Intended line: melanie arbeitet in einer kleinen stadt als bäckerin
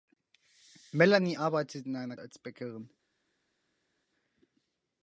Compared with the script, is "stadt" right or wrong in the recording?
wrong